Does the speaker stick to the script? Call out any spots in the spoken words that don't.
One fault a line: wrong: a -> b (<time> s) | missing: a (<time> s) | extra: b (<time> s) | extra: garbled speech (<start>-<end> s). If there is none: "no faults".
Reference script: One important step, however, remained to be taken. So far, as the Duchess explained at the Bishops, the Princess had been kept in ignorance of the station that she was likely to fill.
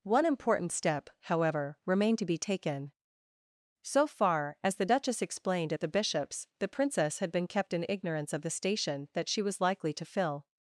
no faults